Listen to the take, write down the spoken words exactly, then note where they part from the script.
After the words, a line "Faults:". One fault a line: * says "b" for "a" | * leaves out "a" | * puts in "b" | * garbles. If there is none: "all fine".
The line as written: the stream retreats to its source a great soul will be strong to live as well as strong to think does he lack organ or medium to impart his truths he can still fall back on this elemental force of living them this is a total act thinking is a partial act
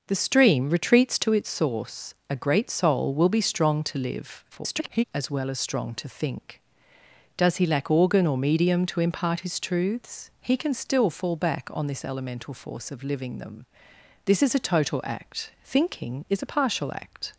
the stream retreats to its source a great soul will be strong to live [garbled] as well as strong to think does he lack organ or medium to impart his truths he can still fall back on this elemental force of living them this is a total act thinking is a partial act
Faults:
* garbles